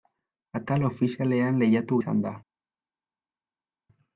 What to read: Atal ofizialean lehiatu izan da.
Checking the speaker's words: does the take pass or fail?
pass